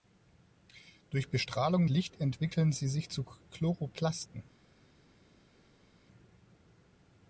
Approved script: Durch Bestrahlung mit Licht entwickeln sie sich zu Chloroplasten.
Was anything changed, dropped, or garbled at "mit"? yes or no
yes